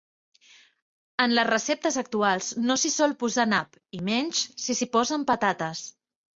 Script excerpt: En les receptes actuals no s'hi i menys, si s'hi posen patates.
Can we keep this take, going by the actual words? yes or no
no